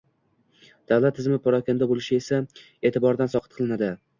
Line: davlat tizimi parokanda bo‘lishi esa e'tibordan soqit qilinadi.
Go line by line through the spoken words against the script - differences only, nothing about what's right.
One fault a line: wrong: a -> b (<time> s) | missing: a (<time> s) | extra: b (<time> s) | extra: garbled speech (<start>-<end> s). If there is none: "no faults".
no faults